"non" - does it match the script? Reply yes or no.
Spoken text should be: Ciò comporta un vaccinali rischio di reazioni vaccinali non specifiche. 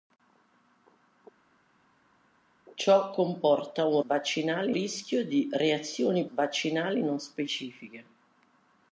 yes